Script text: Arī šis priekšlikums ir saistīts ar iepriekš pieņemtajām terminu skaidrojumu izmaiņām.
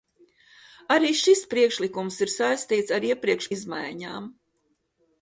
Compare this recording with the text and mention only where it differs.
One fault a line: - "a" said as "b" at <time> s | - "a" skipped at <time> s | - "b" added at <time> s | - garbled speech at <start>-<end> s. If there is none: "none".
- "pieņemtajām terminu skaidrojumu" skipped at 3.5 s